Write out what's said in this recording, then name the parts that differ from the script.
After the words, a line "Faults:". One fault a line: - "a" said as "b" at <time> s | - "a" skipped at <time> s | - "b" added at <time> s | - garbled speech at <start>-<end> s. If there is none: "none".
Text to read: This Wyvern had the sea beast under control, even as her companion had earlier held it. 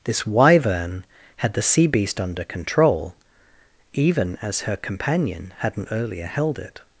This Wyvern had the sea beast under control, even as her companion hadn't earlier held it.
Faults:
- "had" said as "hadn't" at 5.6 s